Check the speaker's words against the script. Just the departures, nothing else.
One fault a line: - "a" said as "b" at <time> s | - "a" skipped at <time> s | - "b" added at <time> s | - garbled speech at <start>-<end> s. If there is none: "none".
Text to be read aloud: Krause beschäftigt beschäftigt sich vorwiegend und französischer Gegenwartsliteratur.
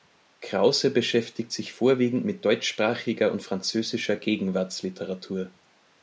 - "beschäftigt" skipped at 1.5 s
- "mit deutschsprachiger" added at 2.2 s